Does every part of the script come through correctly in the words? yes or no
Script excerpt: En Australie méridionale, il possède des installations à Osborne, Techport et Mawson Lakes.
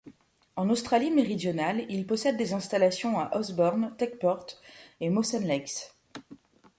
yes